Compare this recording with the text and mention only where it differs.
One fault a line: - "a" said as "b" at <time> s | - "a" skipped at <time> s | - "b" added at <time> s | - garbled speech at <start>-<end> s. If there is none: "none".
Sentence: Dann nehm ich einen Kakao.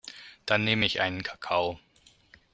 none